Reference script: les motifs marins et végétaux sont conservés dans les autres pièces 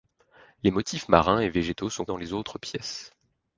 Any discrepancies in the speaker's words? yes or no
yes